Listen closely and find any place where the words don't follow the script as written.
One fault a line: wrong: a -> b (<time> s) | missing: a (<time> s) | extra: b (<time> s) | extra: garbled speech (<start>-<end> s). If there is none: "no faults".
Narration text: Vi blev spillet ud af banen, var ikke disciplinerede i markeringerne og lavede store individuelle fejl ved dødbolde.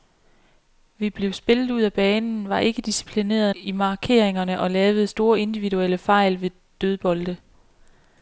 no faults